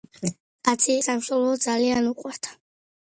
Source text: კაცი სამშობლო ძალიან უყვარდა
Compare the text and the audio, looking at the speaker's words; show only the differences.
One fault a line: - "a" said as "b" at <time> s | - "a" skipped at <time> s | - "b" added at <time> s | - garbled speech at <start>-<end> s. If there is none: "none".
none